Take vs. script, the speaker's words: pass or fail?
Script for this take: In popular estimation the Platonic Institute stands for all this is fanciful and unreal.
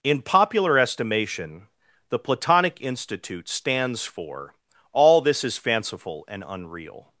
pass